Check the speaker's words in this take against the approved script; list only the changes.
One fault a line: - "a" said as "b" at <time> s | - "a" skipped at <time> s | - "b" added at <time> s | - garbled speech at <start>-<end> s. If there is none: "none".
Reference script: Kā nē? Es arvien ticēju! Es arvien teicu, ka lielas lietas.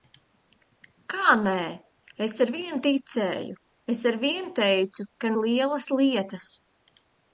none